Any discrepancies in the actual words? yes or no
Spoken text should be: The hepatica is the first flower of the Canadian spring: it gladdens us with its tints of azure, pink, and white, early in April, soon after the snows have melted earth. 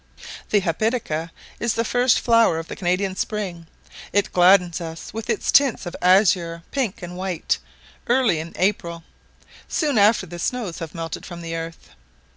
yes